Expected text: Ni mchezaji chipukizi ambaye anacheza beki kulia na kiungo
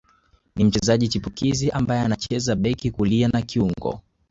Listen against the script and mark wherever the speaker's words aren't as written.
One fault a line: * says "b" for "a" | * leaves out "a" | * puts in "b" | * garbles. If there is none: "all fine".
all fine